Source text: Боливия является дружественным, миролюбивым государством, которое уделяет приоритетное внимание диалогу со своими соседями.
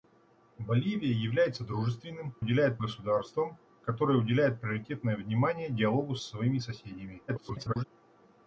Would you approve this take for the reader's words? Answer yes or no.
no